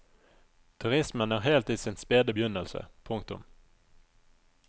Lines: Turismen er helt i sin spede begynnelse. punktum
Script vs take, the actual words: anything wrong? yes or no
no